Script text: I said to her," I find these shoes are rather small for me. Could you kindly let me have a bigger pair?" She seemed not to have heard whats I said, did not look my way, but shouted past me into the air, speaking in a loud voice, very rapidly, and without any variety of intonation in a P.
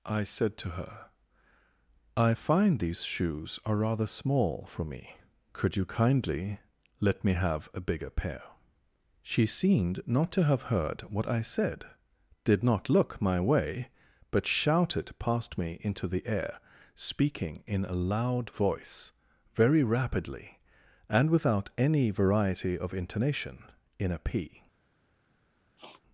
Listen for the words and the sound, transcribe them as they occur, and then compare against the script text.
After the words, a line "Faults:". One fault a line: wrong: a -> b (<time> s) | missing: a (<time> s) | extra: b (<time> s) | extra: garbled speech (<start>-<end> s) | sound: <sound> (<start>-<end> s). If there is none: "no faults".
I said to her," I find these shoes are rather small for me. Could you kindly let me have a bigger pair?" She seemed not to have heard what I said, did not look my way, but shouted past me into the air, speaking in a loud voice, very rapidly, and without any variety of intonation in a P.
Faults:
wrong: whats -> what (11.1 s)
sound: sniff (25.8-26.0 s)